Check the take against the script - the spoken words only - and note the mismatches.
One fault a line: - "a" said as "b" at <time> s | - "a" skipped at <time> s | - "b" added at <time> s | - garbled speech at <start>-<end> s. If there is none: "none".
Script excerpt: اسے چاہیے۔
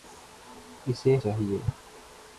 none